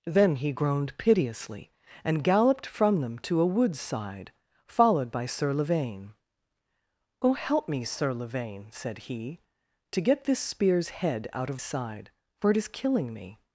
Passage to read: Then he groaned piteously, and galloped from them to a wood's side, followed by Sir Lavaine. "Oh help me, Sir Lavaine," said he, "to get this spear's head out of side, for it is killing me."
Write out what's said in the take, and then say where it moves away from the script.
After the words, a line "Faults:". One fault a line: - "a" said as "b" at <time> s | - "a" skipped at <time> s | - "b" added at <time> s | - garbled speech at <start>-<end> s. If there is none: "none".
Then he groaned piteously, and galloped from them to a wood's side, followed by Sir Lavaine. "Oh help me, Sir Lavaine," said he, "to get this spear's head out of side, for it is killing me."
Faults:
none